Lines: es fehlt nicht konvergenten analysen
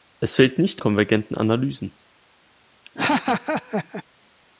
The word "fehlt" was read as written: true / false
true